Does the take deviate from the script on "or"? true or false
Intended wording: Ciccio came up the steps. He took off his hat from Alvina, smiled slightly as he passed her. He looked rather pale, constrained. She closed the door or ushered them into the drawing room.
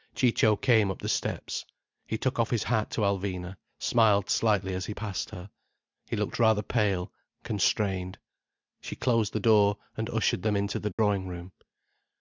true